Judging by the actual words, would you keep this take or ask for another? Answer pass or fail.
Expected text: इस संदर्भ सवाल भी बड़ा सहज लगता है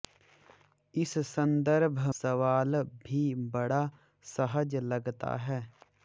pass